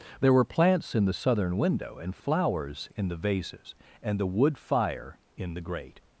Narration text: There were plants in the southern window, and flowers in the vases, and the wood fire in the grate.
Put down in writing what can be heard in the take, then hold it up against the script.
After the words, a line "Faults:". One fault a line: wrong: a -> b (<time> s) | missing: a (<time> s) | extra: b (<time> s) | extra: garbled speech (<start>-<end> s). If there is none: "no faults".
There were plants in the southern window, and flowers in the vases, and the wood fire in the grate.
Faults:
no faults